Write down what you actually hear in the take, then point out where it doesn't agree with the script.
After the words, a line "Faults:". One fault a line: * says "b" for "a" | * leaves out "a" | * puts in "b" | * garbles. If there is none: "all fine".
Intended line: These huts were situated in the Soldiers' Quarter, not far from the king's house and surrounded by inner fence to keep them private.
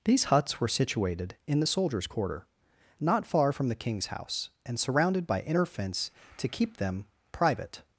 These huts were situated in the Soldiers' Quarter, not far from the king's house and surrounded by inner fence to keep them private.
Faults:
all fine